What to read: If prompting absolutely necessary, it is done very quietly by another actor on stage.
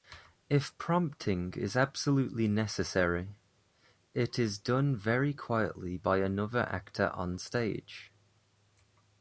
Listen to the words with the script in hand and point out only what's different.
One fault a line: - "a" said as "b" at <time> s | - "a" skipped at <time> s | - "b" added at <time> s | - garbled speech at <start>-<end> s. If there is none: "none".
- "is" added at 1.5 s